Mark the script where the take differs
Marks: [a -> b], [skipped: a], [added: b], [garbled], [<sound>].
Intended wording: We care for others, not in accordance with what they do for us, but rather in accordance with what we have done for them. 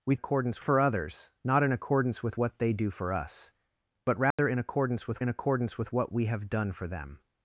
We [care -> accordance] for others, not in accordance with what they do for us, but rather [dropout] in accordance with [added: in accordance with] what we have done for them.